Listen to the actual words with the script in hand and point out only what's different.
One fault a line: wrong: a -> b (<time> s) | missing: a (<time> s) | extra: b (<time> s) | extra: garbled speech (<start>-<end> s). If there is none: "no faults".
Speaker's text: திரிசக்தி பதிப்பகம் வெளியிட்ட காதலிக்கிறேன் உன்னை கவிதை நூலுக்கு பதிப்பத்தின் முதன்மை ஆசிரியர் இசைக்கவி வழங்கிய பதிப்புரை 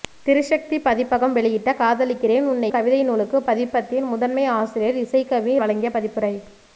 no faults